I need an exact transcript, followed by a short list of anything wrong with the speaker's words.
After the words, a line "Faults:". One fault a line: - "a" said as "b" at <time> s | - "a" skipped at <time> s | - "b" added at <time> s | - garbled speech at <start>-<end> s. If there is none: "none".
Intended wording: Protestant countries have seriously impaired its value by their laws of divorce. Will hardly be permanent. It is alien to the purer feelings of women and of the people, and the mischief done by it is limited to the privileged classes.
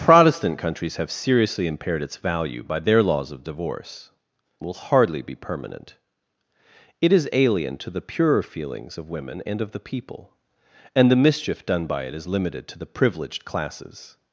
Protestant countries have seriously impaired its value by their laws of divorce. Will hardly be permanent. It is alien to the purer feelings of women and of the people, and the mischief done by it is limited to the privileged classes.
Faults:
none